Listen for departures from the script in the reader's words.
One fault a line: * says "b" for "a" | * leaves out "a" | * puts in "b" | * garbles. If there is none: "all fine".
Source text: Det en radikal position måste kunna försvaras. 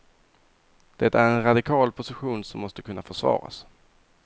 * puts in "är"
* puts in "som"